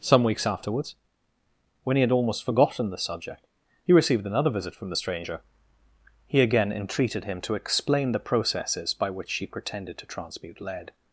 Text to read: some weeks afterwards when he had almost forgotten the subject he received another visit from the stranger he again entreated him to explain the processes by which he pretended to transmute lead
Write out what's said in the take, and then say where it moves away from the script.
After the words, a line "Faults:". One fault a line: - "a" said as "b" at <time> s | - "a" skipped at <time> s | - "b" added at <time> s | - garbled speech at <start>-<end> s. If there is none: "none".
some weeks afterwards when he had almost forgotten the subject he received another visit from the stranger he again entreated him to explain the processes by which she pretended to transmute lead
Faults:
- "he" said as "she" at 9.3 s